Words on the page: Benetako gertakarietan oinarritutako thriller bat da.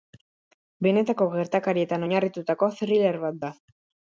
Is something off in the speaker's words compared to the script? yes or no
no